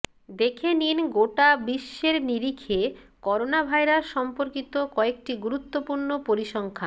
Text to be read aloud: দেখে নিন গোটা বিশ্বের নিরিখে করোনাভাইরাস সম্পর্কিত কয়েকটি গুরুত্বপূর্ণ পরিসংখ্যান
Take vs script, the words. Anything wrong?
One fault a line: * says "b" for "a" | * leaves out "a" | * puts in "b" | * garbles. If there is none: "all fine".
all fine